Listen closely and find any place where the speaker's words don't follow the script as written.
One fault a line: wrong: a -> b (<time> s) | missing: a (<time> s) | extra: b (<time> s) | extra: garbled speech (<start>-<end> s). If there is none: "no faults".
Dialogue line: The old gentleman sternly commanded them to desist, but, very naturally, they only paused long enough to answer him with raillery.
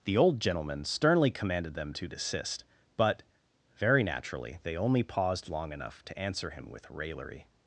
no faults